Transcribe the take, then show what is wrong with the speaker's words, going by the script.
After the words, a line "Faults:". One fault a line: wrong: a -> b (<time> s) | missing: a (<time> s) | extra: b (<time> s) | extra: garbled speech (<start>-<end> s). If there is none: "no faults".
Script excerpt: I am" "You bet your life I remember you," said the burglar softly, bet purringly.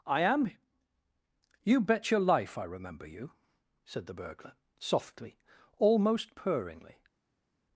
I am" "You bet your life I remember you," said the burglar softly, almost purringly.
Faults:
wrong: bet -> almost (5.8 s)